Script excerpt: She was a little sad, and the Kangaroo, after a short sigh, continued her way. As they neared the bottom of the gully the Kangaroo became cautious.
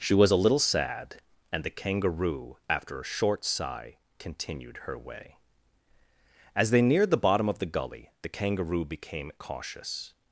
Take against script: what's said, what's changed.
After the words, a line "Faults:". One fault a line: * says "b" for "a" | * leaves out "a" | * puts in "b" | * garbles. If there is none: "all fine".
She was a little sad, and the Kangaroo, after a short sigh, continued her way. As they neared the bottom of the gully the Kangaroo became cautious.
Faults:
all fine